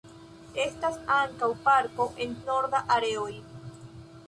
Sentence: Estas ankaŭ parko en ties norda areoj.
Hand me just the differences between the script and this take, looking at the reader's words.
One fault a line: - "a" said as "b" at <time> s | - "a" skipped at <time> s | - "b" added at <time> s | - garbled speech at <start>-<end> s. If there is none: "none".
- "ties" skipped at 2.3 s